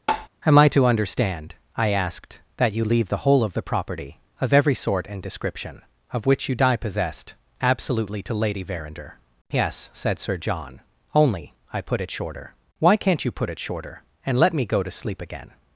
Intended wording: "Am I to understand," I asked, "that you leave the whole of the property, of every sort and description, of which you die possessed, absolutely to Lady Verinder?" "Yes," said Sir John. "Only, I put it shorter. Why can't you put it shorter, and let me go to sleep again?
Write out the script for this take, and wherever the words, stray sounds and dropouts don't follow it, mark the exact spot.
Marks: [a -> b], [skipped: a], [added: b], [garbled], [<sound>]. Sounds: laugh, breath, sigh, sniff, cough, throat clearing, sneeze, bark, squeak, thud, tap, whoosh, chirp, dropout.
[tap] "Am I to understand," I asked, "that you leave the whole of the property, of every sort and description, of which you die possessed, absolutely to Lady Verinder?" "Yes," said Sir John. "Only, I put it shorter. Why can't you put it shorter, and let me go to sleep again?